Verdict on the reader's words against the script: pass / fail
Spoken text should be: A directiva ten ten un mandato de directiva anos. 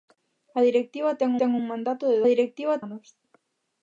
pass